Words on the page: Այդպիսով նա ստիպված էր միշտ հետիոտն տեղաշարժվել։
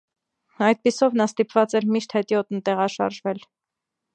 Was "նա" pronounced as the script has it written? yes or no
yes